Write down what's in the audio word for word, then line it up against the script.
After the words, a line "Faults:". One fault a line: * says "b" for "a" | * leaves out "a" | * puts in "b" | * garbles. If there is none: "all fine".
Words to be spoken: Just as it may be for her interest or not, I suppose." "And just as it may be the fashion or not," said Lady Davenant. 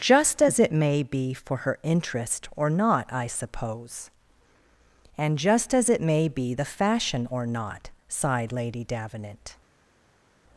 Just as it may be for her interest or not, I suppose." "And just as it may be the fashion or not," sighed Lady Davenant.
Faults:
* says "sighed" for "said"